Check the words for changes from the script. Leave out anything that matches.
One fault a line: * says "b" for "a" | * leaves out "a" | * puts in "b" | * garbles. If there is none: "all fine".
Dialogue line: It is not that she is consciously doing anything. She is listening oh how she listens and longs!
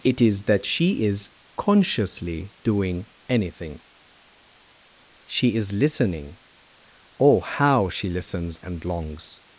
* leaves out "not"